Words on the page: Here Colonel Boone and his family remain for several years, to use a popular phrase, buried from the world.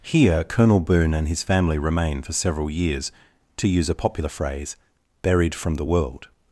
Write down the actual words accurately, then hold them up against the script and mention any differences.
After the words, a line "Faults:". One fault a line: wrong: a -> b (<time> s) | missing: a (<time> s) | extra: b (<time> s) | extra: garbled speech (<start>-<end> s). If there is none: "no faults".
Here Colonel Boone and his family remain for several years, to use a popular phrase, buried from the world.
Faults:
no faults